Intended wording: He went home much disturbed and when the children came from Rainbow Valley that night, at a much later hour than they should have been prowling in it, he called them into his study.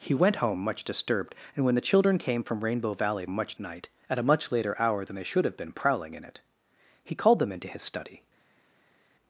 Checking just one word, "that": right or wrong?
wrong